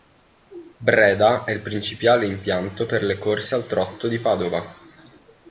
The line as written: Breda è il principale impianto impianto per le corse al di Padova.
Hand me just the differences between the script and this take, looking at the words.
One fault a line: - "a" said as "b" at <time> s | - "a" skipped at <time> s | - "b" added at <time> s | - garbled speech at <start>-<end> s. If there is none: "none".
- "impianto" skipped at 2.9 s
- "trotto" added at 3.6 s